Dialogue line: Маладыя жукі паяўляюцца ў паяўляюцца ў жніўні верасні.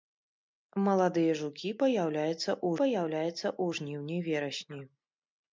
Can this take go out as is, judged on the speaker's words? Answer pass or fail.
pass